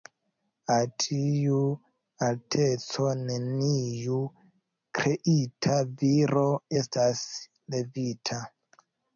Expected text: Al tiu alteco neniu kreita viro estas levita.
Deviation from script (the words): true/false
false